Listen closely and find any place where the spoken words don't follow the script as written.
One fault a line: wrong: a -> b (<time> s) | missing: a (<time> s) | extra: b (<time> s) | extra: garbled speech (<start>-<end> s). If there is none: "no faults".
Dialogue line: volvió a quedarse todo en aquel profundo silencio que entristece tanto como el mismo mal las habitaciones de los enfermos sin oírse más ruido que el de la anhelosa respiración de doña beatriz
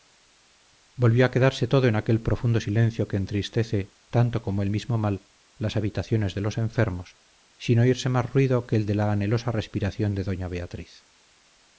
no faults